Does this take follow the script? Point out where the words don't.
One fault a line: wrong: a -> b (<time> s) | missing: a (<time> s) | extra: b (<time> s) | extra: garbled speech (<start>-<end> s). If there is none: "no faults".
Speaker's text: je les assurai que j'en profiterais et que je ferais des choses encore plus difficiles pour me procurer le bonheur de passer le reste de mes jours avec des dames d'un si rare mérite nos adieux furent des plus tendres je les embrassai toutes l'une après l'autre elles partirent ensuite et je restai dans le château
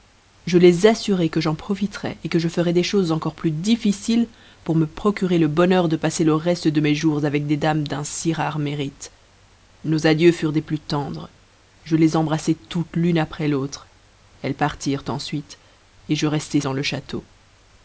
no faults